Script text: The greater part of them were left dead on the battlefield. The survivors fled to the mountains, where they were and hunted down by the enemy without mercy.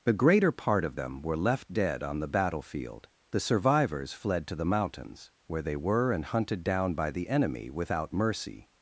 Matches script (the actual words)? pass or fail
pass